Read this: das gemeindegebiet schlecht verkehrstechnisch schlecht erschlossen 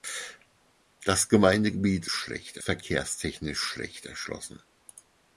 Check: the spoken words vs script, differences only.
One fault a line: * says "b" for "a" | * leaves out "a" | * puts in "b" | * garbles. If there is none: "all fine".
all fine